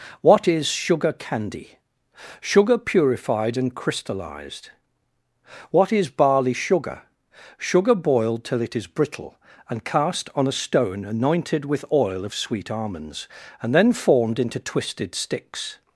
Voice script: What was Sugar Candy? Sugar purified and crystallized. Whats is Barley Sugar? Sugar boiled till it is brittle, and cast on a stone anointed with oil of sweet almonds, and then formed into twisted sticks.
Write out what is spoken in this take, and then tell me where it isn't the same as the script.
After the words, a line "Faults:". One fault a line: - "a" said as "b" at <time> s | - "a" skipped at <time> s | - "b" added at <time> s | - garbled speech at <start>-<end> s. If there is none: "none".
What is Sugar Candy? Sugar purified and crystallized. What is Barley Sugar? Sugar boiled till it is brittle, and cast on a stone anointed with oil of sweet almonds, and then formed into twisted sticks.
Faults:
- "was" said as "is" at 0.5 s
- "Whats" said as "What" at 5.7 s